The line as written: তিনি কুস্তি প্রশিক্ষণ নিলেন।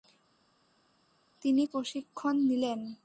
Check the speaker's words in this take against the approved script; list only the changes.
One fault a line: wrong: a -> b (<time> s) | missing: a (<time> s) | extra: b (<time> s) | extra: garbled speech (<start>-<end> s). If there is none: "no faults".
missing: কুস্তি (1.7 s)